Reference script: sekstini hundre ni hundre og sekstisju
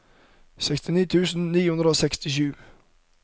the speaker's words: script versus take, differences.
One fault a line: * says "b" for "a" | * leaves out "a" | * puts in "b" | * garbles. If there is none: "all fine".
* says "tusen" for "hundre"